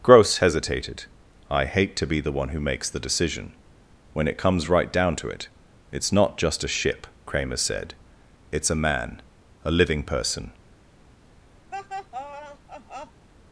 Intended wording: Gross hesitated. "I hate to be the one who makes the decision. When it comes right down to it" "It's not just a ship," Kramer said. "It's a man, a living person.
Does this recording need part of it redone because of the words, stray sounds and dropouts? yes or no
yes